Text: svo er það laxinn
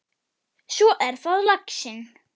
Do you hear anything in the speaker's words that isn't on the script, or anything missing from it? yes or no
no